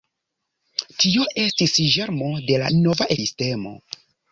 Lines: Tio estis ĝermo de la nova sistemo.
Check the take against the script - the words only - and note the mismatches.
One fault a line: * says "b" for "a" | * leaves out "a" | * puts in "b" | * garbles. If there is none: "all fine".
all fine